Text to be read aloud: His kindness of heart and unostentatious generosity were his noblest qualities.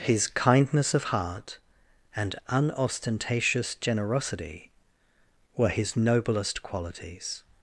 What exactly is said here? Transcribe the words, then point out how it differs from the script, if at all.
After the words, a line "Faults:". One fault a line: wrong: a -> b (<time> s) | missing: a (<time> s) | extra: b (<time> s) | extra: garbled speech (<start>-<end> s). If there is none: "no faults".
His kindness of heart and unostentatious generosity were his noblest qualities.
Faults:
no faults